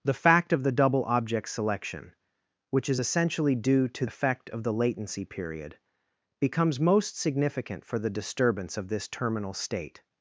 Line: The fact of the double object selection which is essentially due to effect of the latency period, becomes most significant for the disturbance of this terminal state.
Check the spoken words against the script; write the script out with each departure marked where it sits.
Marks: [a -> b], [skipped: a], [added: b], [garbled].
The fact of the double object selection which is essentially due to effect of the latency period, becomes most significant for the disturbance of this terminal state.